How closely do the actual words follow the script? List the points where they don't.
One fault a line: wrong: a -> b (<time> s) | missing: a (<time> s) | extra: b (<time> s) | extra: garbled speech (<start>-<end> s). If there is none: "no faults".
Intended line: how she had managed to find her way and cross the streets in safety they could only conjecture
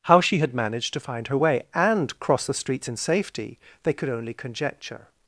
no faults